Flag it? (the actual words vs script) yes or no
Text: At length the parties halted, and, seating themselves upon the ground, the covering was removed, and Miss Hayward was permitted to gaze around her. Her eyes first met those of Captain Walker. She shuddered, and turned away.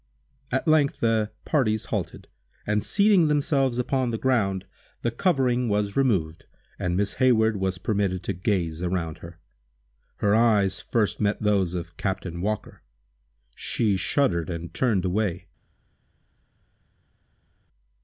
no